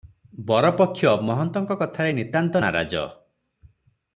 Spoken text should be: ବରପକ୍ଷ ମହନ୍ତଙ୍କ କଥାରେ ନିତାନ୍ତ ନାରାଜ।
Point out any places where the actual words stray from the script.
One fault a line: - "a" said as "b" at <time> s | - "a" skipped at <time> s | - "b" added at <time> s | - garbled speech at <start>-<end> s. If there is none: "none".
none